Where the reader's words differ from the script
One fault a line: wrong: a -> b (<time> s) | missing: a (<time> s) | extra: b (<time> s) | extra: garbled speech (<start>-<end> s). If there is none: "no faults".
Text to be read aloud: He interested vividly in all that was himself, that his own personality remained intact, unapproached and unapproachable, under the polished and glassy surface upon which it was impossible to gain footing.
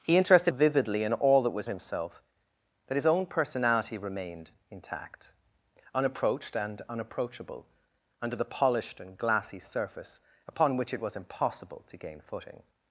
no faults